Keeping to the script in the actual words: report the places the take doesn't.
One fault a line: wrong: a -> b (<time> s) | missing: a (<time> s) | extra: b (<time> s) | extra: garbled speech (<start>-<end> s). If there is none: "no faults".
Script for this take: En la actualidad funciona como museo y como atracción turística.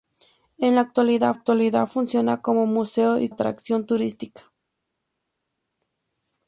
extra: actualidad (1.3 s)
missing: como (3.3 s)